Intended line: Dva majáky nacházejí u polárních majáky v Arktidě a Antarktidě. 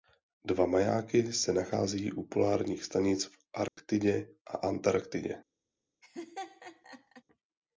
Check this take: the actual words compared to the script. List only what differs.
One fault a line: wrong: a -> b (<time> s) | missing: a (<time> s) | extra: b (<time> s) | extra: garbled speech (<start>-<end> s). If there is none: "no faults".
extra: se (1.3 s)
wrong: majáky -> stanic (2.8 s)